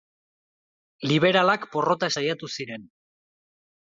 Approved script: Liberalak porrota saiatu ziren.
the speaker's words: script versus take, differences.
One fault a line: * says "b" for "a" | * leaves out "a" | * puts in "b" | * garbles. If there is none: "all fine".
all fine